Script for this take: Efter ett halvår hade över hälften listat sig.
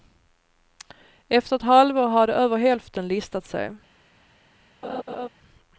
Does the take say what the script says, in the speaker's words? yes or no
yes